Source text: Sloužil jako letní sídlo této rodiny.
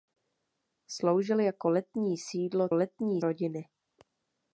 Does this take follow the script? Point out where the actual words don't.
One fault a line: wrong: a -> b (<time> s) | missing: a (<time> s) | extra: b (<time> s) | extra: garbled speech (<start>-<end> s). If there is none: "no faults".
wrong: této -> letní (2.7 s)